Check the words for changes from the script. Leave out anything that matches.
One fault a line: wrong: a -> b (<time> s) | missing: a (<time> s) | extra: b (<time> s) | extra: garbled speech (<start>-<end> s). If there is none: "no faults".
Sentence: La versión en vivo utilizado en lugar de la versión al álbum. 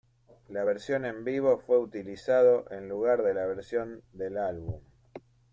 extra: fue (1.6 s)
wrong: al -> del (4.1 s)